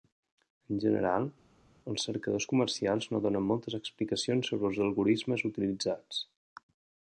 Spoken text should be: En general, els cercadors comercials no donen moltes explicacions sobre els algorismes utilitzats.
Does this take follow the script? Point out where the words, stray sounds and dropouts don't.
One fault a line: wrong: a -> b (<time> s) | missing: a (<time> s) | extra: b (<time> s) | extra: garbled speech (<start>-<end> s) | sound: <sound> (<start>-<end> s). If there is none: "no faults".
no faults